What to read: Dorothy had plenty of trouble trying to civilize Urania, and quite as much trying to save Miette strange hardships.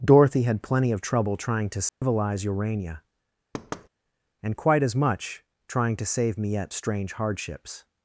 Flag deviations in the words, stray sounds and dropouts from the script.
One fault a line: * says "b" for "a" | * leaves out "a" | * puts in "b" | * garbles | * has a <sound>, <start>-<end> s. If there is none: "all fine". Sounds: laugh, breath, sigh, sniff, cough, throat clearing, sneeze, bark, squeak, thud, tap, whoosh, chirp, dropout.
* has a dropout, 1.9-2.0 s
* has a thud, 3.5-3.9 s